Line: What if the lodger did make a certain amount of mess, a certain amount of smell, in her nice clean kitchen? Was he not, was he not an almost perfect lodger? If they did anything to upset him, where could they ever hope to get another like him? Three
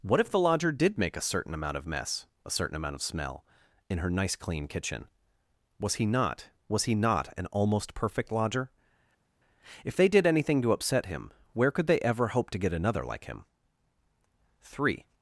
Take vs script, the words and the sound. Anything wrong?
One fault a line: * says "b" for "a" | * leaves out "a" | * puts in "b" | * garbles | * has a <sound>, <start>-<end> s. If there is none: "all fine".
all fine